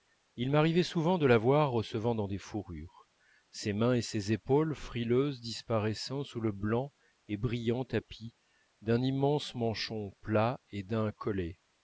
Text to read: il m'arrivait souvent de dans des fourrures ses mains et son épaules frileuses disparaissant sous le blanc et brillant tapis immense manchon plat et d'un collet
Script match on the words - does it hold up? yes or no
no